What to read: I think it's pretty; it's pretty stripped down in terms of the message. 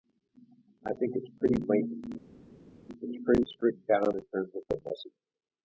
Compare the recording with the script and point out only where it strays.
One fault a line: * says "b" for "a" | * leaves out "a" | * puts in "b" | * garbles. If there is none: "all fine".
* puts in "blatant"